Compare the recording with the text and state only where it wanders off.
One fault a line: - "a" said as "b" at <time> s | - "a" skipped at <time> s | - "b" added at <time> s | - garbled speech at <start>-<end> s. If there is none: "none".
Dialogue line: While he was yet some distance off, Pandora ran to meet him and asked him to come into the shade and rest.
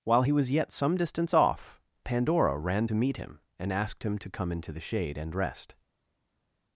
none